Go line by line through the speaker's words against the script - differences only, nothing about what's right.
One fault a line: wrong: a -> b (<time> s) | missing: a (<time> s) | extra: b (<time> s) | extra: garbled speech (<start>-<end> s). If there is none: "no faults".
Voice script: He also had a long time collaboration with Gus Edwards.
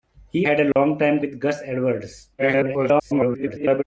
missing: also (0.5 s)
missing: collaboration (1.2 s)
extra: garbled speech (2.4-3.8 s)